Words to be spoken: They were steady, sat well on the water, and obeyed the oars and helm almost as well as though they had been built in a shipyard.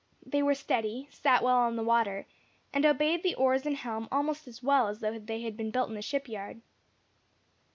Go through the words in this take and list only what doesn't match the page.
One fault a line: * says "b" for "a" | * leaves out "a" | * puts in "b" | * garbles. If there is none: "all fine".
all fine